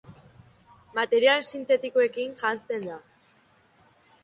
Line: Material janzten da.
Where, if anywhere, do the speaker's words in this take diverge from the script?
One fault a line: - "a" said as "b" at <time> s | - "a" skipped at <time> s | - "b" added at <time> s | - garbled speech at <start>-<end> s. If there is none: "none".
- "sintetikoekin" added at 1.5 s